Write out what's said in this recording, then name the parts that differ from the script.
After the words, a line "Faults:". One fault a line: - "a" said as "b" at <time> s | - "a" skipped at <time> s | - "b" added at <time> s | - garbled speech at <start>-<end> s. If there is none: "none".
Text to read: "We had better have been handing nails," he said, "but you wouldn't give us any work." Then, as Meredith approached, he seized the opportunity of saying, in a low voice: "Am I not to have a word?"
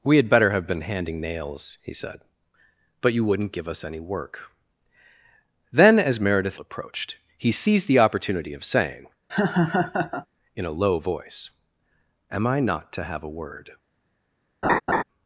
"We had better have been handing nails," he said, "but you wouldn't give us any work." Then, as Meredith approached, he seized the opportunity of saying, in a low voice: "Am I not to have a word?"
Faults:
none